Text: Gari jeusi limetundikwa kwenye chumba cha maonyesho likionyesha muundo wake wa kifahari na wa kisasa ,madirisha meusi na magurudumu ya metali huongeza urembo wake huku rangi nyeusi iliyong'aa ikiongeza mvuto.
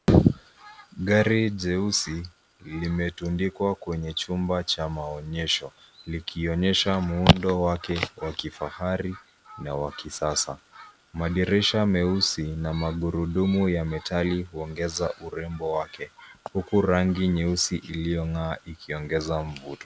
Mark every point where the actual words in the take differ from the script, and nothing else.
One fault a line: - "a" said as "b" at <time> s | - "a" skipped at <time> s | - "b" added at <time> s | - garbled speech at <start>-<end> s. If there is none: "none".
none